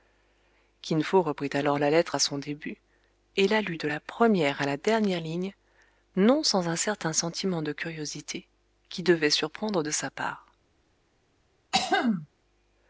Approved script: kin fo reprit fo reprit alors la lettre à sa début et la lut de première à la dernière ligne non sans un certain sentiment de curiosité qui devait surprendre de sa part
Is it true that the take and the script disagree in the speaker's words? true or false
true